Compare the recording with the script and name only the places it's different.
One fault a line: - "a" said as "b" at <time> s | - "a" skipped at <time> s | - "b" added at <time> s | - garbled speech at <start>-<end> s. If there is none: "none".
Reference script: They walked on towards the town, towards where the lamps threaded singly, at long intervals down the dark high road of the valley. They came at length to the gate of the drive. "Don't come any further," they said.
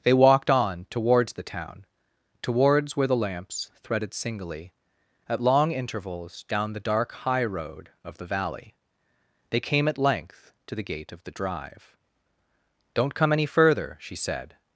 - "they" said as "she" at 14.0 s